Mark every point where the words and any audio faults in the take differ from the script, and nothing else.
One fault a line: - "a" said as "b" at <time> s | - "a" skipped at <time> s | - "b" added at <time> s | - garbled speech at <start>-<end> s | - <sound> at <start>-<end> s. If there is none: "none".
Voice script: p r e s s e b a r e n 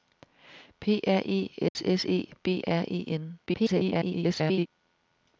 - dropout at 1.7-1.8 s
- "a" skipped at 2.6 s
- garbled speech at 3.5-4.7 s